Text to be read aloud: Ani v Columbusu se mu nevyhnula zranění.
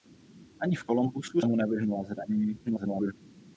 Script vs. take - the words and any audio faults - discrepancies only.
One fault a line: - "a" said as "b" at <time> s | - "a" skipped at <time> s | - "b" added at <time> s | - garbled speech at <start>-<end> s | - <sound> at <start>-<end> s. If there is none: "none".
- "se" skipped at 1.4 s
- garbled speech at 2.7-3.1 s